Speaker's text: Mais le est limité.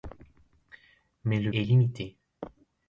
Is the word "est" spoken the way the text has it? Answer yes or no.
yes